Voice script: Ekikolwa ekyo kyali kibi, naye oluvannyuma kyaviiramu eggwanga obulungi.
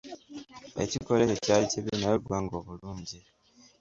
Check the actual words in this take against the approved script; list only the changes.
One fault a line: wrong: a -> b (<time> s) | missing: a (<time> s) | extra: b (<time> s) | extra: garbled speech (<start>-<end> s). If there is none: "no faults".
missing: oluvannyuma kyaviiramu (2.1 s)